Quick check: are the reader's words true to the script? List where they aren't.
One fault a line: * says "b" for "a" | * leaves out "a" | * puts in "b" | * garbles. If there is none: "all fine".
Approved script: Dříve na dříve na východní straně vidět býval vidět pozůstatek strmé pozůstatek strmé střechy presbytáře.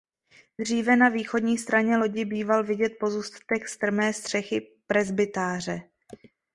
* leaves out "dříve na"
* says "lodi" for "vidět"
* leaves out "pozůstatek strmé"